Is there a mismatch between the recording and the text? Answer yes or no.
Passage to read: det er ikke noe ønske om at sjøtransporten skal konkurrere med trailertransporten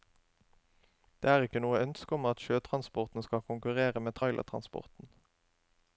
no